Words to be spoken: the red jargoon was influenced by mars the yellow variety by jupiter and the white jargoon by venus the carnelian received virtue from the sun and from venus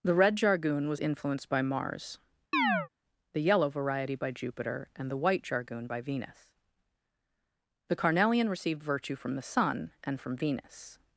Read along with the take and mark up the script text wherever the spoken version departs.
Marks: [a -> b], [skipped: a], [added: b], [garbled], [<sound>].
the red jargoon was influenced by mars [chirp] the yellow variety by jupiter and the white jargoon by venus the carnelian received virtue from the sun and from venus